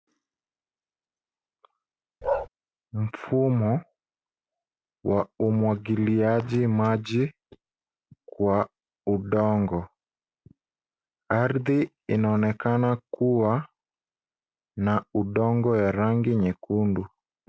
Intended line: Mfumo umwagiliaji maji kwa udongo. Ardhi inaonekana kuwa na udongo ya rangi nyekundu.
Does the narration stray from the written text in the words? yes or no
yes